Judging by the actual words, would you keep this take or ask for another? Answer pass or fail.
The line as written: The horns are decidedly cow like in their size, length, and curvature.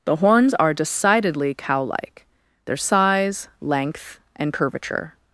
fail